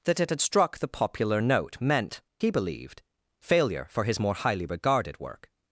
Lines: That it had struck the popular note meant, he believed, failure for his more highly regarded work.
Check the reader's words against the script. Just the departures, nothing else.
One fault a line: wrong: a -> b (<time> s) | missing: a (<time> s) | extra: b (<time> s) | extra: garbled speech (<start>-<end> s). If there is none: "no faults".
no faults